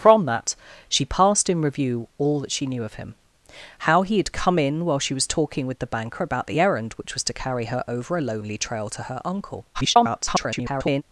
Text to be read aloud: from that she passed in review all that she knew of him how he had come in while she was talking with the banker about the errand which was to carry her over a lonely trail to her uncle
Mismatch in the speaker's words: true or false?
true